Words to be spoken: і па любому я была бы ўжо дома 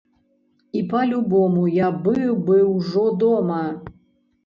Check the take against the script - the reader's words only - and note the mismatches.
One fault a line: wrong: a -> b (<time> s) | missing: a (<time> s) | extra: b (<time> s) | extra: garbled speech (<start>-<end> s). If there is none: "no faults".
wrong: была -> быў (2.1 s)